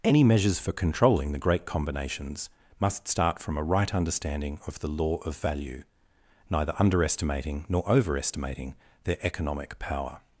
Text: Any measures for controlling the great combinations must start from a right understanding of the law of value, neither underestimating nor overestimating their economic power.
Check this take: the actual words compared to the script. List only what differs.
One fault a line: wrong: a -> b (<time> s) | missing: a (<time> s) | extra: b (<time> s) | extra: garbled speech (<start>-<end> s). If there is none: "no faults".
no faults